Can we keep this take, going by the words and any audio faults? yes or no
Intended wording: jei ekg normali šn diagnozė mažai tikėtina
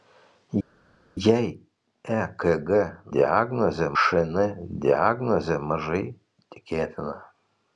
no